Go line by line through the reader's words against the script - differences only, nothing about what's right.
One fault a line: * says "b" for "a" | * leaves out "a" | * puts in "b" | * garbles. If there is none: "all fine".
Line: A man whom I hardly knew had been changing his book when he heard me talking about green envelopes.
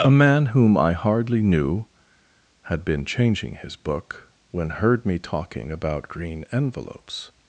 * leaves out "he"